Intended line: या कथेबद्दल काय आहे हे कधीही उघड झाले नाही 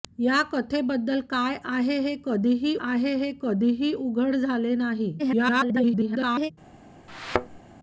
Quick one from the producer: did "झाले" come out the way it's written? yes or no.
yes